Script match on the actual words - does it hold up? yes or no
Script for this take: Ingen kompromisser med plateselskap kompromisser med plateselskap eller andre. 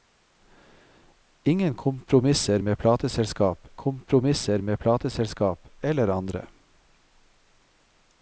yes